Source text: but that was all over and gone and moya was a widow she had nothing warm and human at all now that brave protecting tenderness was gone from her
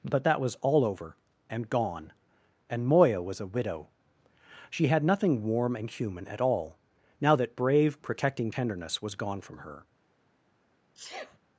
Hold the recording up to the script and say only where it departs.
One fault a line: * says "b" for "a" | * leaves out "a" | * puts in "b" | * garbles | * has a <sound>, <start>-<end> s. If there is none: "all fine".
* has a sneeze, 10.9-11.4 s